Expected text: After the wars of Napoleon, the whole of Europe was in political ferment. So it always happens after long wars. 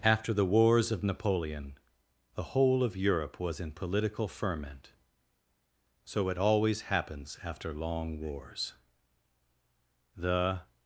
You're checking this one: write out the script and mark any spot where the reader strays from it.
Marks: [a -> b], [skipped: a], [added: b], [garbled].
After the wars of Napoleon, the whole of Europe was in political ferment. So it always happens after long wars. [added: The]